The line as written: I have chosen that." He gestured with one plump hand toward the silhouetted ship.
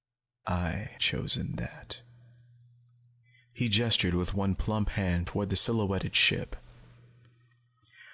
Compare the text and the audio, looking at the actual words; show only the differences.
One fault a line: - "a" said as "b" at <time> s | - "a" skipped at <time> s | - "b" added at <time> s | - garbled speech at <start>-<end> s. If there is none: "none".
- "have" skipped at 0.9 s